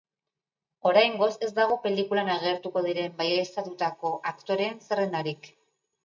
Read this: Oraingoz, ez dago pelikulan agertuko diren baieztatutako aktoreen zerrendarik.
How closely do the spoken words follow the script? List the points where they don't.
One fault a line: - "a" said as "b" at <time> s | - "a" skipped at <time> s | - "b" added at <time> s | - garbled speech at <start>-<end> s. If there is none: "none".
none